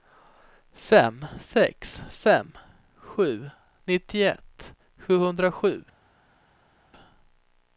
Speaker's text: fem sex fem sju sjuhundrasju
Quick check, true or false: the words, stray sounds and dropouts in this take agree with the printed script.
false